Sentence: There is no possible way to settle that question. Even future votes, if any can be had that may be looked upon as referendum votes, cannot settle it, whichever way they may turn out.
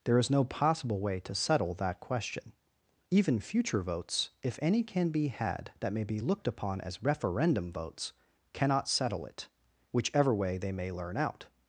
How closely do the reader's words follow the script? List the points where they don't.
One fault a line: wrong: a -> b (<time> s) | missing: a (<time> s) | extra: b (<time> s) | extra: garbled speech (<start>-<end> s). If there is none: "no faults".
wrong: turn -> learn (10.9 s)